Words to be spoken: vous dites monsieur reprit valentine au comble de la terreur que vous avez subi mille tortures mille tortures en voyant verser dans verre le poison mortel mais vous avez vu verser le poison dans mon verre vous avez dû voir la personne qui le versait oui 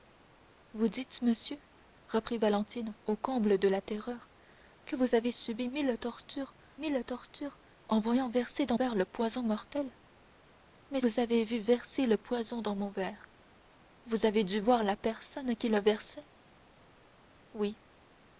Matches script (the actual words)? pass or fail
pass